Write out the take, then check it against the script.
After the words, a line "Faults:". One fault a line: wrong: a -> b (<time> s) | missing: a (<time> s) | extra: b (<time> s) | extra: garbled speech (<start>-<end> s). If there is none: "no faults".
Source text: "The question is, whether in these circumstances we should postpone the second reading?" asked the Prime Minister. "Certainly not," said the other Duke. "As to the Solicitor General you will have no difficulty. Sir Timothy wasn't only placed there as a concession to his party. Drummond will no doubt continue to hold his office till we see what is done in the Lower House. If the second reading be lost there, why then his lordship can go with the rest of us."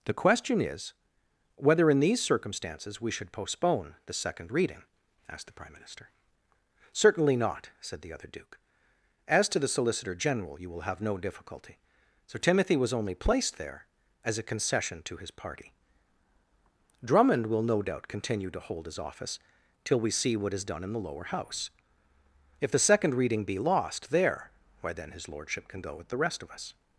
"The question is, whether in these circumstances we should postpone the second reading?" asked the Prime Minister. "Certainly not," said the other Duke. "As to the Solicitor General you will have no difficulty. Sir Timothy was only placed there as a concession to his party. Drummond will no doubt continue to hold his office till we see what is done in the Lower House. If the second reading be lost there, why then his lordship can go with the rest of us."
Faults:
wrong: wasn't -> was (12.8 s)